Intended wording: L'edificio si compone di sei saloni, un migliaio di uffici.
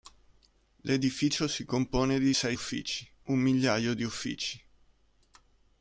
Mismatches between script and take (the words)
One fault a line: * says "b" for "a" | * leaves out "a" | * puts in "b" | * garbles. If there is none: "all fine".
* says "uffici" for "saloni"